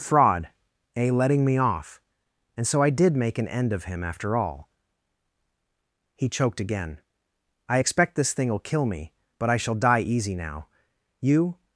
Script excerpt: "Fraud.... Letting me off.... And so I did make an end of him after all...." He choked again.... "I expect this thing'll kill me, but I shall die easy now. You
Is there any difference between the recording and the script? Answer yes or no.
yes